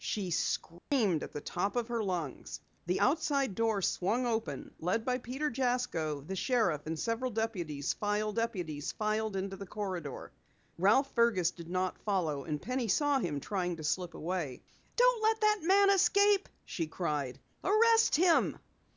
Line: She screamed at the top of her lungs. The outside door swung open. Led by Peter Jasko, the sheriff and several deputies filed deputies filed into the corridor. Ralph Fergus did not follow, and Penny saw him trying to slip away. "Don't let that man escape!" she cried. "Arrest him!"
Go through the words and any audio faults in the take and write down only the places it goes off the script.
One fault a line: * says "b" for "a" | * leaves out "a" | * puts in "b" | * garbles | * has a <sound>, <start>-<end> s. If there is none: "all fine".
* has a dropout, 0.8-0.9 s